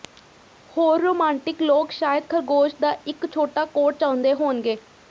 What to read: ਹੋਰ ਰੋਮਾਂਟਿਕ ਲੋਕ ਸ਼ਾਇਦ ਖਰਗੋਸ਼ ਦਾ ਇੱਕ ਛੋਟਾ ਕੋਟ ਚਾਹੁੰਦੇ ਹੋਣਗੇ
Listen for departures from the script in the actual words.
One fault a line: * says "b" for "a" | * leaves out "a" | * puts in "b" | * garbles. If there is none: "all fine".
all fine